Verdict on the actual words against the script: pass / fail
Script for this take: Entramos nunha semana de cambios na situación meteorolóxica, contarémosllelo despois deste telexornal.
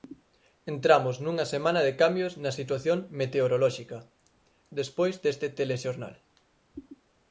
fail